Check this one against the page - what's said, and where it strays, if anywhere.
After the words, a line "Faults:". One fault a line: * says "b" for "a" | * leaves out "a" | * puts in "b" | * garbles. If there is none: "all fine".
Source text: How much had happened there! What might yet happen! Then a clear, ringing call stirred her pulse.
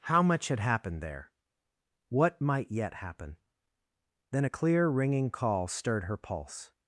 How much had happened there! What might yet happen! Then a clear, ringing call stirred her pulse.
Faults:
all fine